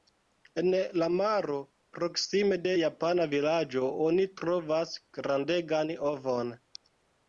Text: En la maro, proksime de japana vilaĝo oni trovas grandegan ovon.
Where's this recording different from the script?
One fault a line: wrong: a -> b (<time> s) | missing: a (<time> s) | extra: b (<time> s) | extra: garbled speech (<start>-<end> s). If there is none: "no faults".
no faults